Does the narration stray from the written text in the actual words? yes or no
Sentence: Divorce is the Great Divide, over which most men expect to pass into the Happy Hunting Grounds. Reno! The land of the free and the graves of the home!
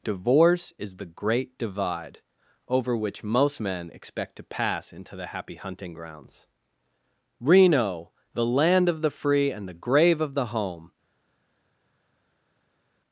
yes